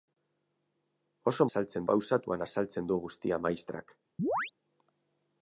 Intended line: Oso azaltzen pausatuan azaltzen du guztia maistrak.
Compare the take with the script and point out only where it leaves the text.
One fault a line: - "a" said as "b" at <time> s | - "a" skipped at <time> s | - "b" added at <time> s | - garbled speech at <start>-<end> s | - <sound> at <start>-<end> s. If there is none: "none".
- chirp at 4.2-4.5 s